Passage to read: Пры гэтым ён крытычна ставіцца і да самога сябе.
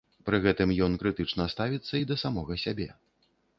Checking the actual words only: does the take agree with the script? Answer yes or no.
yes